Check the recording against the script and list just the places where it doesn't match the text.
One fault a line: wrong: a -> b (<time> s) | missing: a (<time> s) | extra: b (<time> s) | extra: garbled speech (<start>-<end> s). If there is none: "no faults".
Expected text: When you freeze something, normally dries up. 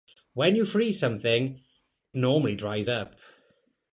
no faults